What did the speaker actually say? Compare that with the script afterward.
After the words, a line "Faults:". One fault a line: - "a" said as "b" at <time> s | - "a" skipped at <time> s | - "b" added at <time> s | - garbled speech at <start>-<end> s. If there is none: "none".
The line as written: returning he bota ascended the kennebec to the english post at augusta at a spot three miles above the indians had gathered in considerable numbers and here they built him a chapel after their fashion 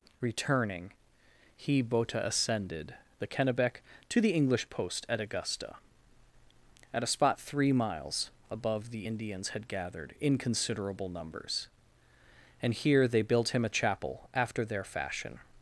returning he bota ascended the kennebec to the english post at augusta at a spot three miles above the indians had gathered in considerable numbers and here they built him a chapel after their fashion
Faults:
none